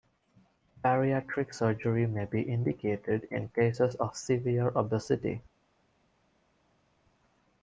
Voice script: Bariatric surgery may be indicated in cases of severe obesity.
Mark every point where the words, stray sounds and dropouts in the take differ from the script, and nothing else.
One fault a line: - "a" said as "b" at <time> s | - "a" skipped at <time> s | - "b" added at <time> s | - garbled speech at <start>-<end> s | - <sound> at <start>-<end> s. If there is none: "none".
none